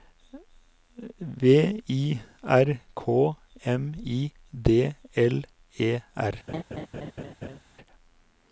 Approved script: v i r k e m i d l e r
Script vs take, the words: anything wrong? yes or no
yes